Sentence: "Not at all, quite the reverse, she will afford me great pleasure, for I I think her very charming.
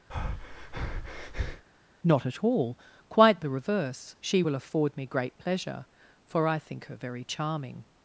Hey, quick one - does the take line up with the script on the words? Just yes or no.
no